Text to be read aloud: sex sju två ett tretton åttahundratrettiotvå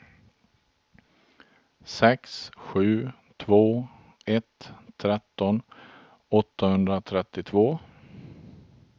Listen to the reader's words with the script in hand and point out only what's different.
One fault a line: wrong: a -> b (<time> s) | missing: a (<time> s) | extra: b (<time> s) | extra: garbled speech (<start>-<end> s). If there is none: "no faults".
no faults